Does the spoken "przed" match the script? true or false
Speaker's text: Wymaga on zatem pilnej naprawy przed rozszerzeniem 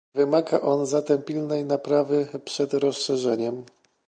true